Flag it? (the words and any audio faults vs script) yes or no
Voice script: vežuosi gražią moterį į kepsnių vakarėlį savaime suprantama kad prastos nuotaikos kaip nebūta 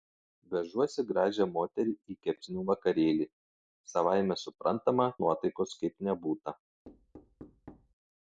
yes